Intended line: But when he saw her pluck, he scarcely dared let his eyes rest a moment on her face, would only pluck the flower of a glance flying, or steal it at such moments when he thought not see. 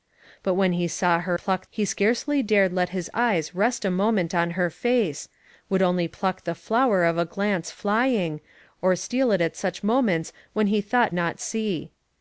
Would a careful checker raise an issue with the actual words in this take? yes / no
no